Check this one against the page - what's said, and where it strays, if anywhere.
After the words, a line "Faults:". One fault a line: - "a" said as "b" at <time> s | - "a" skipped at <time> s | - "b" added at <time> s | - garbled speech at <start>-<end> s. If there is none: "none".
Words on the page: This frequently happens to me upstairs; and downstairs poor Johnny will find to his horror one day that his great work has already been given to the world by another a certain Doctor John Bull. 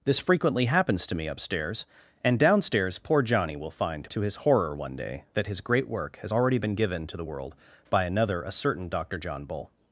This frequently happens to me upstairs; and downstairs poor Johnny will find to his horror one day that his great work has already been given to the world by another a certain Doctor John Bull.
Faults:
none